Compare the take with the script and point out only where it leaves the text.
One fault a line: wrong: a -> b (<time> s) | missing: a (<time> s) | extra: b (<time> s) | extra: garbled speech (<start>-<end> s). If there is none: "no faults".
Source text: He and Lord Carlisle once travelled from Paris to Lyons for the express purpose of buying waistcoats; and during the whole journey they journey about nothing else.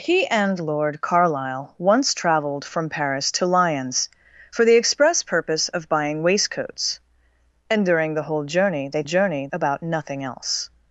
no faults